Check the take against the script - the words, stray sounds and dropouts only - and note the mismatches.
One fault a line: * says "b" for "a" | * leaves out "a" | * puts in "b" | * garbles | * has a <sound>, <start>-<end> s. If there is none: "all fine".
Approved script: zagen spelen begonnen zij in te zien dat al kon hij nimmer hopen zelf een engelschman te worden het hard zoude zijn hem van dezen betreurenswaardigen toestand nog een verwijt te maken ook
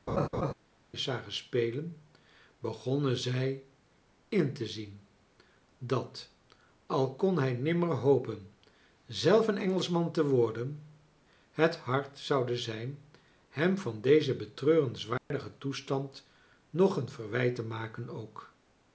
* has a laugh, 0.1-0.5 s
* has a dropout, 15.2-15.3 s